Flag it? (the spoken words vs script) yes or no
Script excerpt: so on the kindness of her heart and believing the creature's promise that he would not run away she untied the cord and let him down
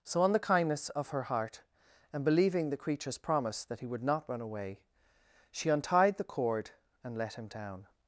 no